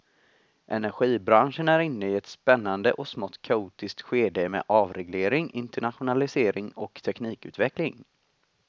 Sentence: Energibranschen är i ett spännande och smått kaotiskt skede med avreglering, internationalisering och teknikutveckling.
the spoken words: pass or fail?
fail